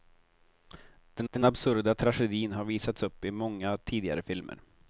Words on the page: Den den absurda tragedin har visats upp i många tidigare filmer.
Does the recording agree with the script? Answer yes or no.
yes